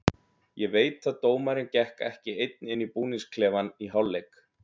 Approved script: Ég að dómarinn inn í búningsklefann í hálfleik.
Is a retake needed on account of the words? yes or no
yes